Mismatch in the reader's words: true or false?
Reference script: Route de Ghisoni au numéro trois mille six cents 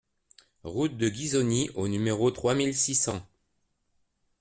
false